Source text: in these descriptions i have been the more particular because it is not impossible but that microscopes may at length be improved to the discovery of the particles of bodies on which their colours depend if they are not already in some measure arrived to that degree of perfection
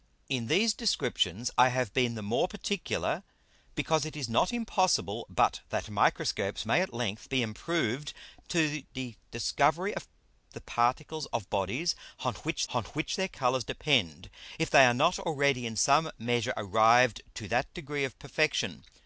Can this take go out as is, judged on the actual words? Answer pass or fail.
fail